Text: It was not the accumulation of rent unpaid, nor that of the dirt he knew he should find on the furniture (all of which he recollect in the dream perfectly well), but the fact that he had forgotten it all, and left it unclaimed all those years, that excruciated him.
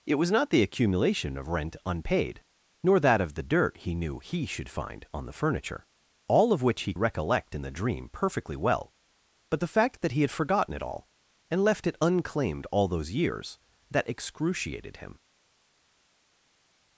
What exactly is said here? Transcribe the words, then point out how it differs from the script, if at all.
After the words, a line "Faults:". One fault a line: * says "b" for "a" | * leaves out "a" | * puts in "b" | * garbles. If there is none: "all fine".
It was not the accumulation of rent unpaid, nor that of the dirt he knew he should find on the furniture (all of which he recollect in the dream perfectly well), but the fact that he had forgotten it all, and left it unclaimed all those years, that excruciated him.
Faults:
all fine